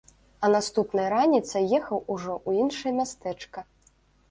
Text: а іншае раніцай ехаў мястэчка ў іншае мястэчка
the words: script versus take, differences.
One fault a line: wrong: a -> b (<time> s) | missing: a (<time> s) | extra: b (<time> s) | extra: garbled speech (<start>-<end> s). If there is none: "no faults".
wrong: іншае -> наступнай (0.5 s)
wrong: мястэчка -> ужо (2.1 s)